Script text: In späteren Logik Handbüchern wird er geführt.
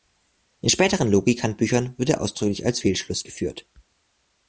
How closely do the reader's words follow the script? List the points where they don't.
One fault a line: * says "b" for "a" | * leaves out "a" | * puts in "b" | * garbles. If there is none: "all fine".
* puts in "ausdrücklich als Fehlschluss"